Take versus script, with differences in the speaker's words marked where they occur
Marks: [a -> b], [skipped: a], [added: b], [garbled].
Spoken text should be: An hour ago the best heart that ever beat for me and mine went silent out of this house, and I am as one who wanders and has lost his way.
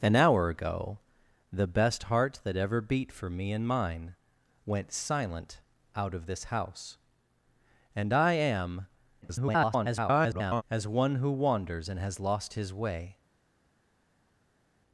An hour ago the best heart that ever beat for me and mine went silent out of this house, and I am [garbled] as one who wanders and has lost his way.